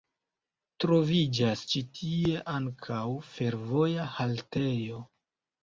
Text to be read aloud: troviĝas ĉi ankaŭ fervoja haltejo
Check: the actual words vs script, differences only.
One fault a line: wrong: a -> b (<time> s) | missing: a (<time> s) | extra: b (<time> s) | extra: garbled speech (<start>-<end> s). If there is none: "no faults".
extra: tie (2.0 s)